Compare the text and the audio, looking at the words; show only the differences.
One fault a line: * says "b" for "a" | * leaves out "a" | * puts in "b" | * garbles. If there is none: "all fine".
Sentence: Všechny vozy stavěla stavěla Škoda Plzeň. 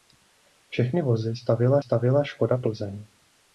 all fine